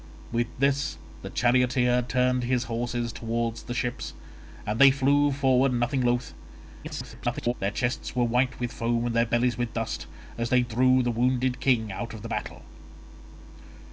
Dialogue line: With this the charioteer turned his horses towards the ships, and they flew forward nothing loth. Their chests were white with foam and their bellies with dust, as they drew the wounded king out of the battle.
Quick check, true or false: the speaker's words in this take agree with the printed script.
false